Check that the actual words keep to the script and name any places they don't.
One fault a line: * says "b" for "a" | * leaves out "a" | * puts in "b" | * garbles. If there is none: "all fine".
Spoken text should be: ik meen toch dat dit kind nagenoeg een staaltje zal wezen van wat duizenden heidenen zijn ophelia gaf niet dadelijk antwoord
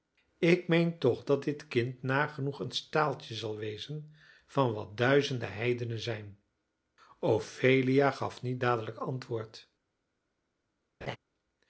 all fine